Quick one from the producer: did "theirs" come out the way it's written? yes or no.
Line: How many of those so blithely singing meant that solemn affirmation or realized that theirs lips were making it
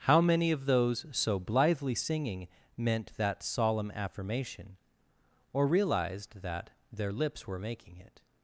no